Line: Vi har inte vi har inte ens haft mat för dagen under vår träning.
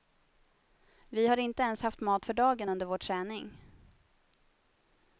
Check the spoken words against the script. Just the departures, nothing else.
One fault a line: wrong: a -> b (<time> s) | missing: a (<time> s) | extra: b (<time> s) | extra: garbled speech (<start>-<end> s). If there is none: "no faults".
missing: vi har inte (1.6 s)